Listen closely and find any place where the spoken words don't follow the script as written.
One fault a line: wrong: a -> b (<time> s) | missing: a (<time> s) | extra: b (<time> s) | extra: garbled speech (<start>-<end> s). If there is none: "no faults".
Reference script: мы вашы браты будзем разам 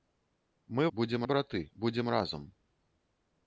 wrong: вашы -> будзем (0.9 s)